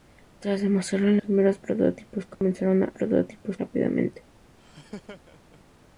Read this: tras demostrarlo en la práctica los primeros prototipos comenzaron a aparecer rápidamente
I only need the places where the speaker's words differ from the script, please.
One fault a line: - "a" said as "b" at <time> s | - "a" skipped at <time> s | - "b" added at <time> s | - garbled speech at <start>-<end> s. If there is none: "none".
- "la práctica los" skipped at 1.2 s
- "aparecer" said as "prototipos" at 2.9 s